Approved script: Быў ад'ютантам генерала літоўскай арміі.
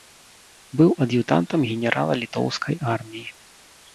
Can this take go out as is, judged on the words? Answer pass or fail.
pass